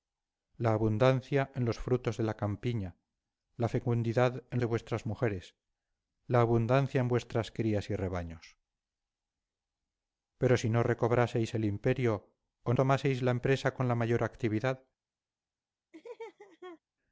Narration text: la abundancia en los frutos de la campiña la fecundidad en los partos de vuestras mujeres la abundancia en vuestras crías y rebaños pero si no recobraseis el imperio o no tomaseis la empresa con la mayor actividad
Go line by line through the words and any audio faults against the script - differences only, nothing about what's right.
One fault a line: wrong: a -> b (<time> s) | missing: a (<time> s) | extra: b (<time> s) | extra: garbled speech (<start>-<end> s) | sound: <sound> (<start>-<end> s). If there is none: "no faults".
missing: los partos (4.6 s)
missing: no (12.7 s)
sound: laugh (15.9-16.8 s)